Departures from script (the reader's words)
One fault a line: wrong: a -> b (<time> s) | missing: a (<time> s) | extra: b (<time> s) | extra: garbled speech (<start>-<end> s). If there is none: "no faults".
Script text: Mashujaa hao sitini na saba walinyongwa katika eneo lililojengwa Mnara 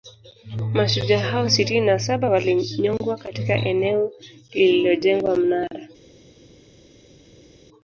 no faults